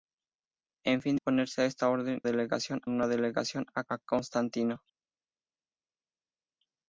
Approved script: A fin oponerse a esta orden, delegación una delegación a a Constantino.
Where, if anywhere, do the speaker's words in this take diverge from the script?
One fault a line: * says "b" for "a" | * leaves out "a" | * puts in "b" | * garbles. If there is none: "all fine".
all fine